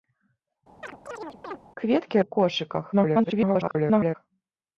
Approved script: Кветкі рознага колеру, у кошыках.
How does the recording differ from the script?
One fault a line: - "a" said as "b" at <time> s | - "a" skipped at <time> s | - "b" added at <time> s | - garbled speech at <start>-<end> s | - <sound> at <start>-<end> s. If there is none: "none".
- chirp at 0.8-1.6 s
- "рознага колеру" skipped at 2.2 s
- garbled speech at 2.9-4.2 s